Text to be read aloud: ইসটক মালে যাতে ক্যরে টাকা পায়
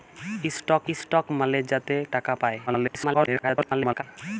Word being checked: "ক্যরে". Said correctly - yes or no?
no